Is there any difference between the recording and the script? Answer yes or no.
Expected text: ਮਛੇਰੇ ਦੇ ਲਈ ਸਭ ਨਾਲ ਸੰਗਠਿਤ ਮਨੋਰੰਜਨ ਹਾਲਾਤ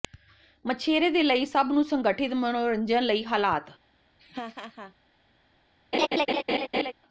yes